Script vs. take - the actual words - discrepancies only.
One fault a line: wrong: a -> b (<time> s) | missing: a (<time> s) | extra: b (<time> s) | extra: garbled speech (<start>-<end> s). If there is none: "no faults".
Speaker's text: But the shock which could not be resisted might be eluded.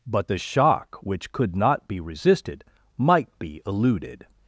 no faults